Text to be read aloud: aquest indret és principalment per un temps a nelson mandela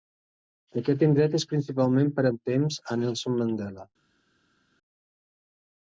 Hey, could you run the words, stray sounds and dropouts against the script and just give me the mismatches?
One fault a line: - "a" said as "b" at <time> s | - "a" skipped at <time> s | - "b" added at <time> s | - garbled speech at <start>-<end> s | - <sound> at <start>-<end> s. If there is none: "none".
none